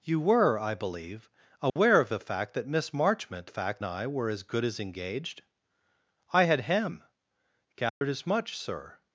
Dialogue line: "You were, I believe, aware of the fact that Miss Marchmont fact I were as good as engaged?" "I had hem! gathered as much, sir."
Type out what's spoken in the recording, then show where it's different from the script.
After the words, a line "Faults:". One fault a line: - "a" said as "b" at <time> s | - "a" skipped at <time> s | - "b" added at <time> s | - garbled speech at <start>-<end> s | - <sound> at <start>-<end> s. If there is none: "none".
"You were, I believe, aware of the fact that Miss Marchmont fact I were as good as engaged?" "I had hem! gathered as much, sir."
Faults:
- dropout at 1.7-1.8 s
- dropout at 7.9-8.0 s